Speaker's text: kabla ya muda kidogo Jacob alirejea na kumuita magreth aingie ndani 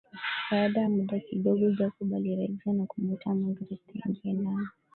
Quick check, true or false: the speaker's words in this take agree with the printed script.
false